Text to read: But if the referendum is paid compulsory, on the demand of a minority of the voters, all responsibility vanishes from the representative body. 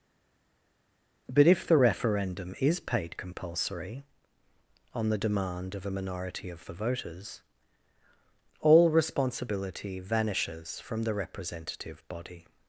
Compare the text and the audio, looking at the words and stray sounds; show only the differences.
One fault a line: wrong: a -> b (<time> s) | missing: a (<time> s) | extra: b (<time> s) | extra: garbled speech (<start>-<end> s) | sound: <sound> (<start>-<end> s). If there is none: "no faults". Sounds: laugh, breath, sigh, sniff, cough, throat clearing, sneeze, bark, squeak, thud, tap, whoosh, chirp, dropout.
no faults